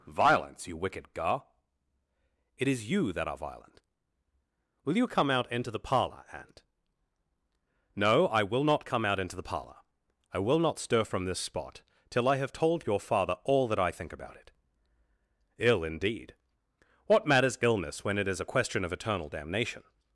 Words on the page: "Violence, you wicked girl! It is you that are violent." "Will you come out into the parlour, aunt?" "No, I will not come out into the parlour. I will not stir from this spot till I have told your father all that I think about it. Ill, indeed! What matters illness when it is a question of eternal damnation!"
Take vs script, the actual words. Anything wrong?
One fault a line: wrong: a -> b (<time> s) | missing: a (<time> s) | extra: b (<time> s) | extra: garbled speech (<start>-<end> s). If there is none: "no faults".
wrong: girl -> gar (1.1 s)